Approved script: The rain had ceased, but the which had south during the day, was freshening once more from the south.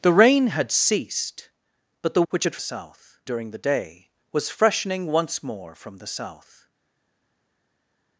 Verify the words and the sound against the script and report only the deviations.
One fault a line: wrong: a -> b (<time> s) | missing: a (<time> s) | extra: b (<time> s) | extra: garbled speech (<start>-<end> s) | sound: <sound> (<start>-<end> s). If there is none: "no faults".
no faults